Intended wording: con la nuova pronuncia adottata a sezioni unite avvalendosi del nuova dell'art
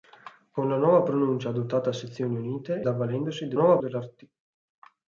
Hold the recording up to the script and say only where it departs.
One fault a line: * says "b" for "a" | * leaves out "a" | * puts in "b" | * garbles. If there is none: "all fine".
all fine